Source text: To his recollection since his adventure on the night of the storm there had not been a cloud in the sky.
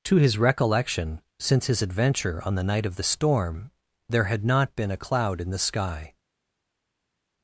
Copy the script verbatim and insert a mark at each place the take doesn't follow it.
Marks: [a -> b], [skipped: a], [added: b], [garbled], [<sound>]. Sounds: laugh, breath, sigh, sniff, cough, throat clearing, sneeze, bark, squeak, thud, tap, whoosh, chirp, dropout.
To his recollection since his adventure on the night of the storm there had not been a cloud in the sky.